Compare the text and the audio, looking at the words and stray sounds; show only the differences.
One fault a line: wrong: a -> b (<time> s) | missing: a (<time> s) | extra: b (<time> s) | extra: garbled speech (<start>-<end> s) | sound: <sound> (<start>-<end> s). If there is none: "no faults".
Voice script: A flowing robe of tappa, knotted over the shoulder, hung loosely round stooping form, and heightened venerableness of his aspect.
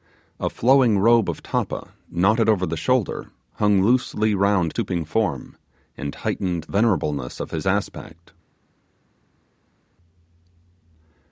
no faults